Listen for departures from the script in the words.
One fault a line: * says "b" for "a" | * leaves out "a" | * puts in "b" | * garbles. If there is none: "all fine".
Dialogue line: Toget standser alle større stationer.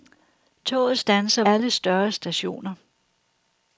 all fine